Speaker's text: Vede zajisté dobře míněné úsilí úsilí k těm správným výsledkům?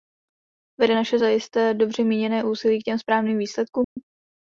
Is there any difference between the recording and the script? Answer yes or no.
yes